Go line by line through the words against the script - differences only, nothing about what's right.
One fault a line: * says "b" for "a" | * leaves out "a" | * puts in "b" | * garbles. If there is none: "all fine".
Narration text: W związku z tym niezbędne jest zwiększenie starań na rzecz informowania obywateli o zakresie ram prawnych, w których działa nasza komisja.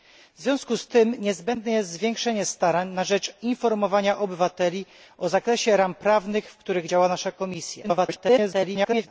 * garbles